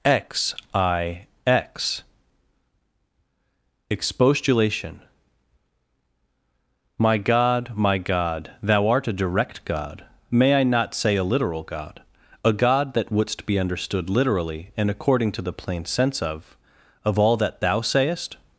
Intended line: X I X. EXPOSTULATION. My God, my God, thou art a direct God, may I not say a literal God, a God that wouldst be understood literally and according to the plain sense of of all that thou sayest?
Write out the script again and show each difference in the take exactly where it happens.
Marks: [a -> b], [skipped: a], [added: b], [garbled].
X I X. EXPOSTULATION. My God, my God, thou art a direct God, may I not say a literal God, a God that wouldst be understood literally and according to the plain sense of of all that thou sayest?